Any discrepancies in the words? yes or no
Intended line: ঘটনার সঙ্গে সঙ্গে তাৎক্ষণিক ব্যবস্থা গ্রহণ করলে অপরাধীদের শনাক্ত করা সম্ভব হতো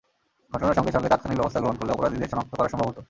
no